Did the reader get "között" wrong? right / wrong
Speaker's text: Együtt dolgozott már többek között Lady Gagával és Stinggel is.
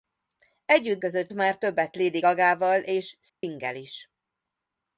wrong